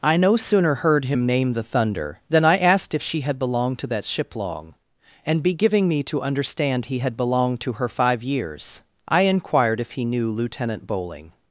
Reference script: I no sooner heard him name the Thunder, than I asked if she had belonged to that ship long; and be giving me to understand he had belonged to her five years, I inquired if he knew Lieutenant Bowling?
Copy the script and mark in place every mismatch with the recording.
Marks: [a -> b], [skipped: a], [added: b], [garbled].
I no sooner heard him name the Thunder, than I asked if she had belonged to that ship long; and be giving me to understand he had belonged to her five years, I inquired if he knew Lieutenant Bowling?